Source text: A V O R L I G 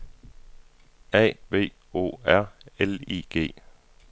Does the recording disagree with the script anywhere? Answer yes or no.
no